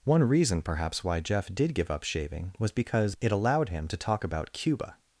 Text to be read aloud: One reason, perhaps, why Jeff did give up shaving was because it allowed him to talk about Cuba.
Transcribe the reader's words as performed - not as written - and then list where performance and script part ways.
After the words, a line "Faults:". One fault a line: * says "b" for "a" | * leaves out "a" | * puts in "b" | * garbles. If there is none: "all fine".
One reason, perhaps, why Jeff did give up shaving was because it allowed him to talk about Cuba.
Faults:
all fine